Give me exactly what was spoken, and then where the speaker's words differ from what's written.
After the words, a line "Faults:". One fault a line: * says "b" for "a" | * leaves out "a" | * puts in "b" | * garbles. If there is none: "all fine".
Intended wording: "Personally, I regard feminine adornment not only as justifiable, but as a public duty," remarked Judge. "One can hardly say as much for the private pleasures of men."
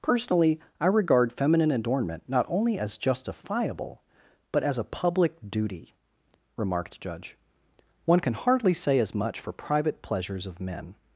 "Personally, I regard feminine adornment not only as justifiable, but as a public duty," remarked Judge. "One can hardly say as much for private pleasures of men."
Faults:
* leaves out "the"